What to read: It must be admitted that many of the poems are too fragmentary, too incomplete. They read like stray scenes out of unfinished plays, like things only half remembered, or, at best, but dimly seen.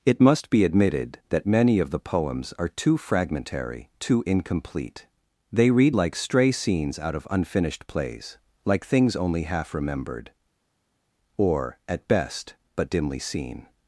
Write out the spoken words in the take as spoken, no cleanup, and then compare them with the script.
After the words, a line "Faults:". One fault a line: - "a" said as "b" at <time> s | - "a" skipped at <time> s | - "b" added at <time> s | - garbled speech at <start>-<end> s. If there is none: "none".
It must be admitted that many of the poems are too fragmentary, too incomplete. They read like stray scenes out of unfinished plays, like things only half remembered, or, at best, but dimly seen.
Faults:
none